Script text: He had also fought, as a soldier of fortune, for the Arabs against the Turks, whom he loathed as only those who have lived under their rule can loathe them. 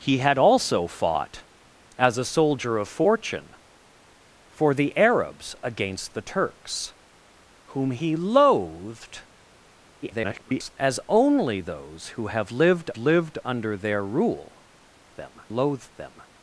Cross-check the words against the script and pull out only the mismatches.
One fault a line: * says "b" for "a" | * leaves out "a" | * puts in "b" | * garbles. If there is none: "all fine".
* garbles
* puts in "lived"
* says "them" for "can"